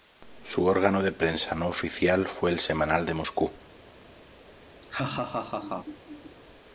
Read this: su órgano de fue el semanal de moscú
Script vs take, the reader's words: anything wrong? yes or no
yes